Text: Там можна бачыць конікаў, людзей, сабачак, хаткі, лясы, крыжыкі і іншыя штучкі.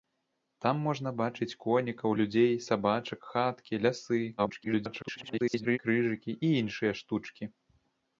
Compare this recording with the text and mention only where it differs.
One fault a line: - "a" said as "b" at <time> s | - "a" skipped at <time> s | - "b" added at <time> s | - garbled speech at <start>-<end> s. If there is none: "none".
- garbled speech at 4.4-5.8 s